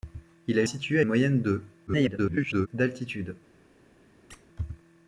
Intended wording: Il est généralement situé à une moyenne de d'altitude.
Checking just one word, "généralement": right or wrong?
wrong